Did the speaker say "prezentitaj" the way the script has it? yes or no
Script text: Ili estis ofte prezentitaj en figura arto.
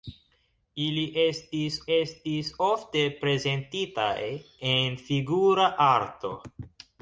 yes